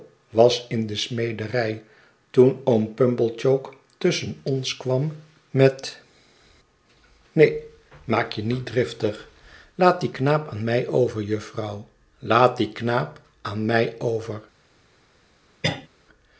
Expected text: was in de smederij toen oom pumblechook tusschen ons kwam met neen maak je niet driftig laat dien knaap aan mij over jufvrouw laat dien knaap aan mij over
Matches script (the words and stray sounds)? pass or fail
fail